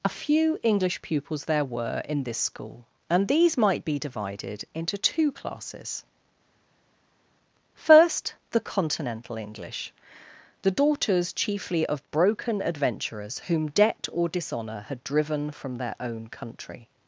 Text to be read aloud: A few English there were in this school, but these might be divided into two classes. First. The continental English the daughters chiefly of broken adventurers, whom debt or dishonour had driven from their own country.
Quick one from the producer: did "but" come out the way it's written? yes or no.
no